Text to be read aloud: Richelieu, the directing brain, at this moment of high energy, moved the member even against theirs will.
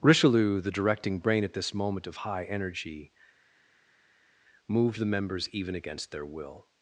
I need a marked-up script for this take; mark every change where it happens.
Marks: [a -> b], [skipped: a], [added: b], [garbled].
Richelieu, the directing brain, at this moment of high energy, moved the [member -> members] even against [theirs -> their] will.